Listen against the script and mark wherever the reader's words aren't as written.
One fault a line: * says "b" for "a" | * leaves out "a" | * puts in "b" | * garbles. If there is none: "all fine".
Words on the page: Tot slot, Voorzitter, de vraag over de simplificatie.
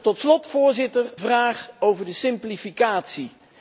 * leaves out "de"